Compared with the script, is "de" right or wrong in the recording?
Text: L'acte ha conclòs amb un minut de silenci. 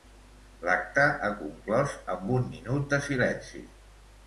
right